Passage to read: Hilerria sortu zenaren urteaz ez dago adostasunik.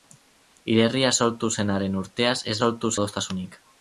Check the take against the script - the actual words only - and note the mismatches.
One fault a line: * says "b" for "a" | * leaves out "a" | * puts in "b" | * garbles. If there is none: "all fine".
* says "sortu" for "dago"